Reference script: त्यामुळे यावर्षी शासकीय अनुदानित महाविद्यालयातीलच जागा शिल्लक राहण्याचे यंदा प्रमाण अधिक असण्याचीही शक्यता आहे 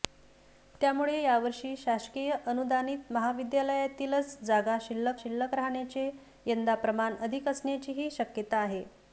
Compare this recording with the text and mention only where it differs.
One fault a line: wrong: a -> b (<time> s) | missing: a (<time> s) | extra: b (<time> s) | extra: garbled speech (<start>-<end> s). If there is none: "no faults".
extra: शिल्लक (5.2 s)